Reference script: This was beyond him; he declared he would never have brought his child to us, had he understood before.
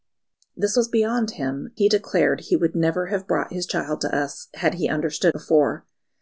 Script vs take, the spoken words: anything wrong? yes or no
no